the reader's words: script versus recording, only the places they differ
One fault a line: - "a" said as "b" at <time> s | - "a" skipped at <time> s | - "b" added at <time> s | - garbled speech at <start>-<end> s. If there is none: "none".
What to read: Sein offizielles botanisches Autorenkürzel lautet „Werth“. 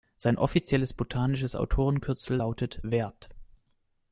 none